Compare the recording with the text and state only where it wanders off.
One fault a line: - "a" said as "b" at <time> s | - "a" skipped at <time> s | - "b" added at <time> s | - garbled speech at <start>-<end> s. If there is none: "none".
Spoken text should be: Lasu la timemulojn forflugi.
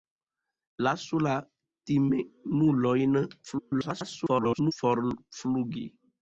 - garbled speech at 3.4-4.7 s